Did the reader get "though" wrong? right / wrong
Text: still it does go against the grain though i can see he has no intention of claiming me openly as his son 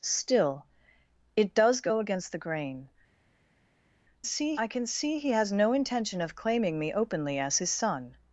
wrong